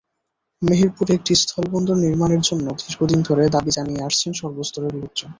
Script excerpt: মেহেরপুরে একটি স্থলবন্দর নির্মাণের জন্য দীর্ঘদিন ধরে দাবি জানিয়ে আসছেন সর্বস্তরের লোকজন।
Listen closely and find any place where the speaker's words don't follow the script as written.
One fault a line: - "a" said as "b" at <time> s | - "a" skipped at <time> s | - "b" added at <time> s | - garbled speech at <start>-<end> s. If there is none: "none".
none